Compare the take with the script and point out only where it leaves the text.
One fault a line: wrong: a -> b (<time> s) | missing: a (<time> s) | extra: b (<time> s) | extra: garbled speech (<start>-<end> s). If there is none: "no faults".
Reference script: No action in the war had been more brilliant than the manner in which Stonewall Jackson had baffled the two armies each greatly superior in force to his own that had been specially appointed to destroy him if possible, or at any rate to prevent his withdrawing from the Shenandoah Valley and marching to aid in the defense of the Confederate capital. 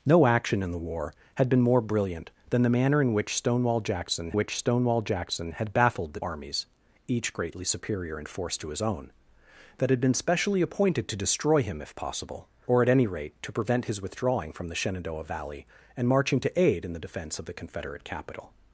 extra: which Stonewall Jackson (4.3 s)
missing: two (6.2 s)